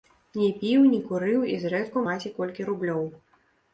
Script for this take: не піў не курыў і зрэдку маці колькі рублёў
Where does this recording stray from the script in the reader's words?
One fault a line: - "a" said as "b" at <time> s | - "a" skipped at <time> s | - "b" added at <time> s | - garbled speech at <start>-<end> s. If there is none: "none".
none